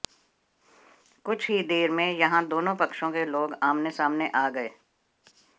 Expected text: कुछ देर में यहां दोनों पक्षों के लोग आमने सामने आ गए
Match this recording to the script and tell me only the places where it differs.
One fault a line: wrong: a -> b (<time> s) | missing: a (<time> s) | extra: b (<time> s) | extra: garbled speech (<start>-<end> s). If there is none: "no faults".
extra: ही (1.5 s)